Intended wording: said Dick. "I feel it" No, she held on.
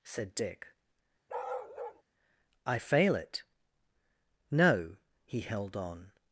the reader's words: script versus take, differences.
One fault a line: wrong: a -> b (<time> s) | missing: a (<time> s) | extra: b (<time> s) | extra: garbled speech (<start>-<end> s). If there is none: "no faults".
wrong: feel -> fail (2.8 s)
wrong: she -> he (5.3 s)